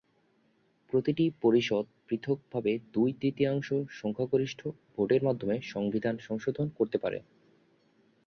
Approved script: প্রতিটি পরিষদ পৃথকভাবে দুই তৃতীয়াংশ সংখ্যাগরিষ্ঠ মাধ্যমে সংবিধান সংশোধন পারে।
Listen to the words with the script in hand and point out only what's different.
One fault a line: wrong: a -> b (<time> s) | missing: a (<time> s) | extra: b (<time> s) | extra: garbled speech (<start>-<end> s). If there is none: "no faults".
extra: ভোটের (5.0 s)
extra: করতে (6.8 s)